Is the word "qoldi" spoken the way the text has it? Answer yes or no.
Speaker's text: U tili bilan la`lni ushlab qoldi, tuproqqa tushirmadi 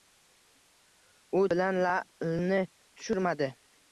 no